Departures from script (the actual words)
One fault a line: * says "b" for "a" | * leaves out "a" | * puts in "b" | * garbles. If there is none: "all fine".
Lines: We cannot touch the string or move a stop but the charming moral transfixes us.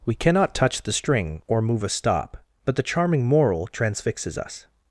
all fine